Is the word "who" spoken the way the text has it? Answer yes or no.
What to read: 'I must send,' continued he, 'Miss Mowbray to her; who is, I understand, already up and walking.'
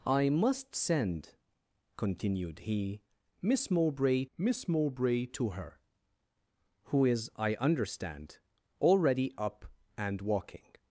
yes